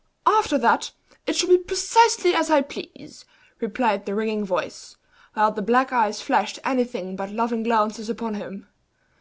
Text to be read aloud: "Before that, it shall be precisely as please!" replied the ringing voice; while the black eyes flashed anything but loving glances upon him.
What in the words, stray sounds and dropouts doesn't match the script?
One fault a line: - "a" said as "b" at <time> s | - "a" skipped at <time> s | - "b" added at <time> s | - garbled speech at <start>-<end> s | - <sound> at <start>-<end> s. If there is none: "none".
- "Before" said as "After" at 0.2 s
- "I" added at 2.5 s